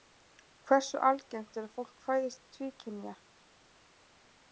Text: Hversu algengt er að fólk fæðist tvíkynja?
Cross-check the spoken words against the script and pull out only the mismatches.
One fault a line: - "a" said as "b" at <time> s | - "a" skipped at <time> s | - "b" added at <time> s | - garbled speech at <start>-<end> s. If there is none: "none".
none